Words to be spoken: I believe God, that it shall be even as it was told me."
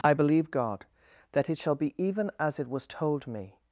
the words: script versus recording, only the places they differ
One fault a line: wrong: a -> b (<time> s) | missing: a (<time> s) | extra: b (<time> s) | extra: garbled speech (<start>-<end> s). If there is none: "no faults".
no faults